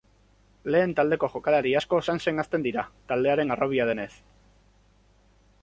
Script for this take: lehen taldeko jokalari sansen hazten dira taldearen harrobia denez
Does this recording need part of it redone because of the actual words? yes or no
yes